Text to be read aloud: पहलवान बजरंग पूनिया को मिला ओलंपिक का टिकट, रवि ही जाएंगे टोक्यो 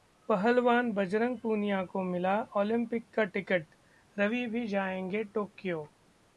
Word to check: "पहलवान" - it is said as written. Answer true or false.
true